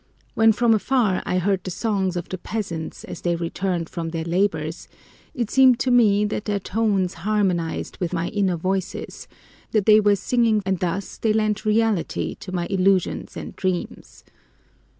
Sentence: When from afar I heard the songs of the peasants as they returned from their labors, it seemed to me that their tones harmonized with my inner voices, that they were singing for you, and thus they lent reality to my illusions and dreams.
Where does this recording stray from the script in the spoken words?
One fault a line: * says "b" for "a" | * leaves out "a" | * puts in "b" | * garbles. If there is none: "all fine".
* leaves out "for you"